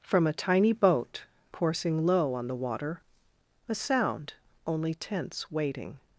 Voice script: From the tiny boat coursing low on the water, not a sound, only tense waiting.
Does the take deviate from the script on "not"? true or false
true